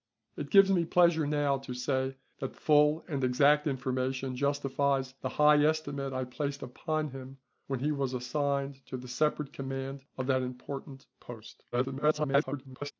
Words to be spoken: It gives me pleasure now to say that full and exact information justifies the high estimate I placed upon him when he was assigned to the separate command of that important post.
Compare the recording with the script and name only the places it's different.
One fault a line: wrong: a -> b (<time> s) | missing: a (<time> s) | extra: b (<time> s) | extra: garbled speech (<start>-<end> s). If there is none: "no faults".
extra: garbled speech (11.7-12.9 s)